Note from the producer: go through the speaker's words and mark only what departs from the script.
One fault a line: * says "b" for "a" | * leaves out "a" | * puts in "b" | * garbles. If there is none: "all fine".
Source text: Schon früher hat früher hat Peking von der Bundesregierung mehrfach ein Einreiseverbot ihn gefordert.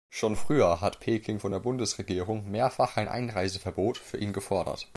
* leaves out "früher hat"
* puts in "für"